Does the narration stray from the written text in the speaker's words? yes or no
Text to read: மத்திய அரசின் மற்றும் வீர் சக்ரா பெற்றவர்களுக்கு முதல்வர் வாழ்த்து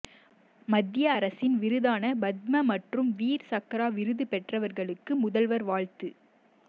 yes